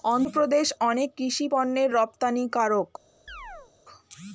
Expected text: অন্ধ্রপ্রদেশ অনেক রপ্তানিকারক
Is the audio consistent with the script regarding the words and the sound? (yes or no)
no